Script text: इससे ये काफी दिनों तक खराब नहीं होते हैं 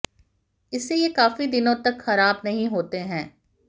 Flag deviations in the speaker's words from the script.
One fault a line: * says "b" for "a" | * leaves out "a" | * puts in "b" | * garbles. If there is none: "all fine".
all fine